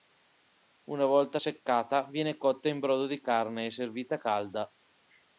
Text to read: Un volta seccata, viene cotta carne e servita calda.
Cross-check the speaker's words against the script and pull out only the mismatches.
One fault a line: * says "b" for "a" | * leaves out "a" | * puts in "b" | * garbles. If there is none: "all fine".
* says "Una" for "Un"
* puts in "in brodo di"